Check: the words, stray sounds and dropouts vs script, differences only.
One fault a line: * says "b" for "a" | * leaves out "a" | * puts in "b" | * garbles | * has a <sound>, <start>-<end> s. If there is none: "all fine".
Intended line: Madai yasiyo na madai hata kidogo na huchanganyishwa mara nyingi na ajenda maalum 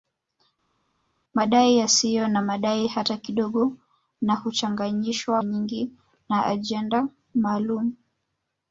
* leaves out "mara"